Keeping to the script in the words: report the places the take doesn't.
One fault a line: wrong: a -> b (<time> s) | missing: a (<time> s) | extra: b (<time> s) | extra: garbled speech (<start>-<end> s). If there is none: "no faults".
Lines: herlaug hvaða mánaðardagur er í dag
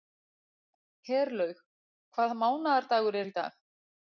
no faults